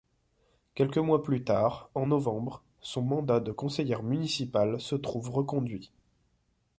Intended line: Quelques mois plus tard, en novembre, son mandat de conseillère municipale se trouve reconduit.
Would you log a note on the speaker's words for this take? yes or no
no